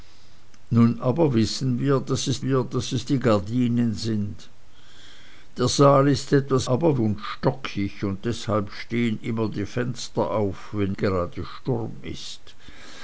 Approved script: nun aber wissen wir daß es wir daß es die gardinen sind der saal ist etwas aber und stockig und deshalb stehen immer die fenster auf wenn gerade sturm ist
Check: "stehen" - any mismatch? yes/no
no